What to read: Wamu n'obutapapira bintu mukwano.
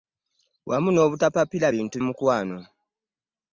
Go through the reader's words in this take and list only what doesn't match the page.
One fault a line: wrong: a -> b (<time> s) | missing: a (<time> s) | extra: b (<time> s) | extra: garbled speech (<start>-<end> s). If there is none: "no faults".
no faults